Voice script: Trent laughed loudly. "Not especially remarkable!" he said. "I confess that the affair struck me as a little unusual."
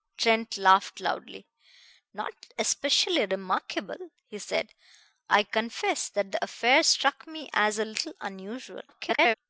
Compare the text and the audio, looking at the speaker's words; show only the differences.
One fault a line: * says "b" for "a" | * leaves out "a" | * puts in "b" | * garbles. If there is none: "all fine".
* garbles